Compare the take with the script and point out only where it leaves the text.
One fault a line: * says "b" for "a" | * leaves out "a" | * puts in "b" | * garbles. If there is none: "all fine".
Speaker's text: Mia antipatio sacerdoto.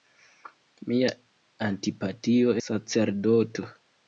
all fine